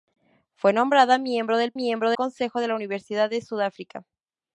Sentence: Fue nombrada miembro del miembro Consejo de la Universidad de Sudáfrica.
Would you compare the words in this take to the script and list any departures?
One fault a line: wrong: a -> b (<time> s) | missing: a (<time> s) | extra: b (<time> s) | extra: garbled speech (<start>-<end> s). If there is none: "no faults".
no faults